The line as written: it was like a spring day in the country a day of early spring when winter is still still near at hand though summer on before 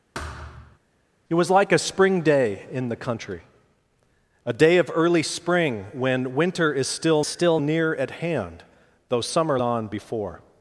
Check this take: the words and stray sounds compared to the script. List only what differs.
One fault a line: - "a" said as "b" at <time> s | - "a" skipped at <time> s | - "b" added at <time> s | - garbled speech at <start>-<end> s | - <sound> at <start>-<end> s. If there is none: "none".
- thud at 0.1-0.8 s